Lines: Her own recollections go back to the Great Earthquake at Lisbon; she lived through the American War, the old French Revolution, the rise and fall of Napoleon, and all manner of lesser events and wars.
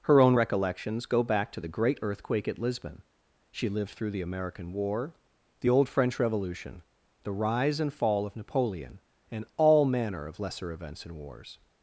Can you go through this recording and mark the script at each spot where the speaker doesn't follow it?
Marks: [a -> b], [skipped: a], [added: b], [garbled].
Her own recollections go back to the Great Earthquake at Lisbon; she lived through the American War, the old French Revolution, the rise and fall of Napoleon, and all manner of lesser events and wars.